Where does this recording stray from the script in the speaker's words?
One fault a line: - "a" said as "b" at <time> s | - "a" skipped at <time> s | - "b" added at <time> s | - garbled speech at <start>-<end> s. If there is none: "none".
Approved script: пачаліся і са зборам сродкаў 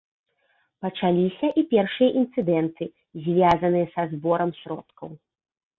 - "першыя інцыдэнты звязаныя" added at 1.8 s